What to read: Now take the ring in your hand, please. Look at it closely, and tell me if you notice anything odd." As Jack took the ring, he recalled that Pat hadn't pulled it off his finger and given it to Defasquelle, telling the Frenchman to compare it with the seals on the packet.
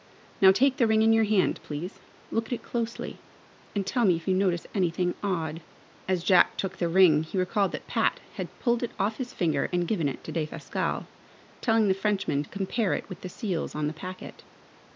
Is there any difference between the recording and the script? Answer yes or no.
yes